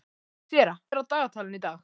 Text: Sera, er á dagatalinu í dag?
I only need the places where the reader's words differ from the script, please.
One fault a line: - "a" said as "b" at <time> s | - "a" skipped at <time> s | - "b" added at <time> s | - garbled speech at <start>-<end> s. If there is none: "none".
none